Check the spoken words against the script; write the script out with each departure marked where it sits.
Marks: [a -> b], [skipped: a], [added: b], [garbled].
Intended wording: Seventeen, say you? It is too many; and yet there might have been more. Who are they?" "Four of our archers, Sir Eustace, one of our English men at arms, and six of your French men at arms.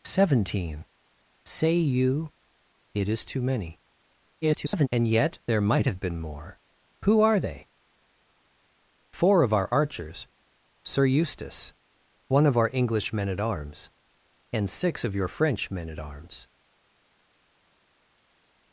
Seventeen, say you? It is too many; [garbled] and yet there might have been more. Who are they?" "Four of our archers, Sir Eustace, one of our English men at arms, and six of your French men at arms.